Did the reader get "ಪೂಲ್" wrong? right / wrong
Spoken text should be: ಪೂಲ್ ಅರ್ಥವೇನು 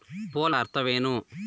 right